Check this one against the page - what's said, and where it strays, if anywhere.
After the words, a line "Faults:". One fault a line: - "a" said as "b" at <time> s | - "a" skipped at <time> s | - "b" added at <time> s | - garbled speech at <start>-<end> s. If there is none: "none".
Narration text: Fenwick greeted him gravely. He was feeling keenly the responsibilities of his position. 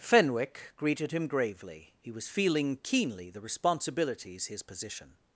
Fenwick greeted him gravely. He was feeling keenly the responsibilities his position.
Faults:
- "of" skipped at 4.5 s